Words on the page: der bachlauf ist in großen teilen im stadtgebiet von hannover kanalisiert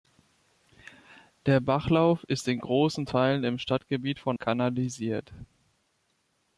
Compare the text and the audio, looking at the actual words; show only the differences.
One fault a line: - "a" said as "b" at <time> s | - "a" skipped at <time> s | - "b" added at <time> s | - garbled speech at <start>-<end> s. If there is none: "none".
- "hannover" skipped at 4.4 s